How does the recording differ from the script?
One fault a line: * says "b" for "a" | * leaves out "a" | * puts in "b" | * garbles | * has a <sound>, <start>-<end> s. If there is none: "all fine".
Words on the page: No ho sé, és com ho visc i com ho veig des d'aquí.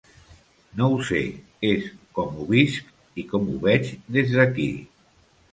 all fine